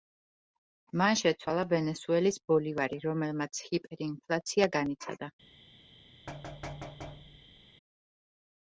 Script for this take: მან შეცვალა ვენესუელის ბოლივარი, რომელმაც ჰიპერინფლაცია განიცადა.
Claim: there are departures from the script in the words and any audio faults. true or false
true